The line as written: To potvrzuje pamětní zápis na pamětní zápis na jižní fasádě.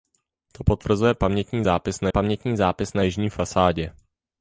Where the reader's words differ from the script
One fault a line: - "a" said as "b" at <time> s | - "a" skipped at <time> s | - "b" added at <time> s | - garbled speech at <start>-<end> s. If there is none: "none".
none